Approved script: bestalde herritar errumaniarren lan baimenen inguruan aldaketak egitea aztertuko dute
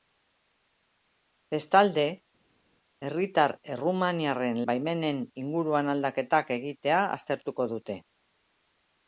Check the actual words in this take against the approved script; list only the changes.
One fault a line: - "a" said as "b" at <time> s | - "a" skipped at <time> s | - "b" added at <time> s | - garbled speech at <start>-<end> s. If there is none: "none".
- "lan" skipped at 4.6 s